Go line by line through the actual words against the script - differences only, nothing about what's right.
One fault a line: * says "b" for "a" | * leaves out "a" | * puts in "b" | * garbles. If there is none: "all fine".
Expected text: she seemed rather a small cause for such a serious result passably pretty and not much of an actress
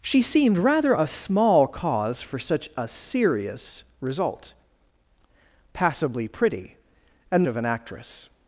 * leaves out "not much"